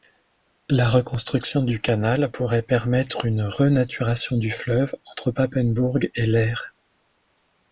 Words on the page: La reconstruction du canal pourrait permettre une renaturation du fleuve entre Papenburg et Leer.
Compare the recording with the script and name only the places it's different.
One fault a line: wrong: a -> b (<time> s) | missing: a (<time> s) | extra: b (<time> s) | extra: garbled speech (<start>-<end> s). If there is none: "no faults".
no faults